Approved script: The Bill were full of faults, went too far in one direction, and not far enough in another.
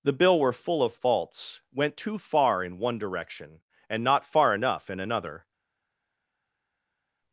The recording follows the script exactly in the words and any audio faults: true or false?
true